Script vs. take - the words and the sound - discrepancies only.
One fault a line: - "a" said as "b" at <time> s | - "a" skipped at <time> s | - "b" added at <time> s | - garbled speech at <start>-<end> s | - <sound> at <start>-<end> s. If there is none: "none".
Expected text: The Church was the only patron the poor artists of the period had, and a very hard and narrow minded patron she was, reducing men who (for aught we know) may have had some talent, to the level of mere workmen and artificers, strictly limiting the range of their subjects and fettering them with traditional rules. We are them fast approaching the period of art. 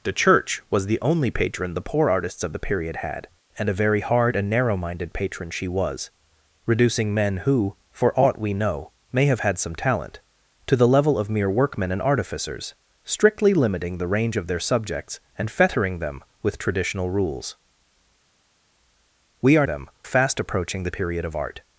none